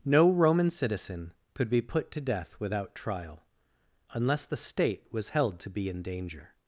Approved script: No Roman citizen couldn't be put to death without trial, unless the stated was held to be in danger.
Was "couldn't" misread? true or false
true